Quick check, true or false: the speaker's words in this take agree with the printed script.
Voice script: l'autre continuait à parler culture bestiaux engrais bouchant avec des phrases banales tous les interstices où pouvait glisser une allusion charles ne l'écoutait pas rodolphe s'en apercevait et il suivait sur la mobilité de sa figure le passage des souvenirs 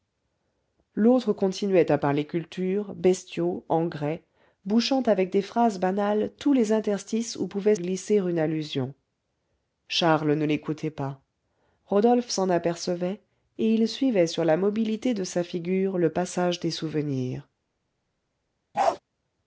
true